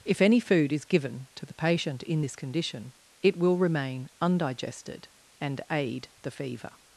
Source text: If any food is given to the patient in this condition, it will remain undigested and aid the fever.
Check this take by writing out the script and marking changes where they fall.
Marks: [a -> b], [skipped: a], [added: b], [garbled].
If any food is given to the patient in this condition, it will remain undigested and aid the fever.